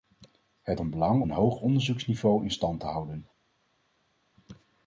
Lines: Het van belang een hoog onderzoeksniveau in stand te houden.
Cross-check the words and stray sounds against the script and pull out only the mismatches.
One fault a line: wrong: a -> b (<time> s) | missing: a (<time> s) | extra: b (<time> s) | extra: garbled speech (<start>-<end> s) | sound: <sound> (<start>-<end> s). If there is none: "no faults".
no faults